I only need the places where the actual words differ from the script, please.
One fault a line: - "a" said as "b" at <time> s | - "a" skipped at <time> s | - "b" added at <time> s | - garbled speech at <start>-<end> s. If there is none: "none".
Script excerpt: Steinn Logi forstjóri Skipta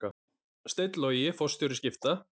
none